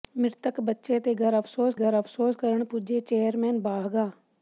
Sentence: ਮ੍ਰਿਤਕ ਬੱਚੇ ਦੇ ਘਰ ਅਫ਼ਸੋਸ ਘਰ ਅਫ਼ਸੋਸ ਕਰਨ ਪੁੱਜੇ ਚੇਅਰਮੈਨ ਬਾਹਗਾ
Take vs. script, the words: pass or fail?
pass